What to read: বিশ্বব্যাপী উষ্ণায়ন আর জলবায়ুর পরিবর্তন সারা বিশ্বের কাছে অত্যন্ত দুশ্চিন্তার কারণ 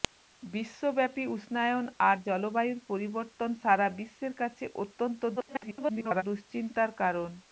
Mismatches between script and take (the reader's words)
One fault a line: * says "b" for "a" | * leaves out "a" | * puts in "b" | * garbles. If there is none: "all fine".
* garbles